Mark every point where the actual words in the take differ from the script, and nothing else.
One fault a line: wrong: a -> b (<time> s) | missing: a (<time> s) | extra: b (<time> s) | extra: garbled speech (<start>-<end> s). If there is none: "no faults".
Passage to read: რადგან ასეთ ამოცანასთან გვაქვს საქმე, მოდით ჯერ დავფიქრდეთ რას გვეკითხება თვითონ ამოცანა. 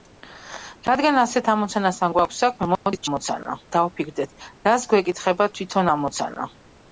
wrong: ჯერ -> ამოცანა (3.1 s)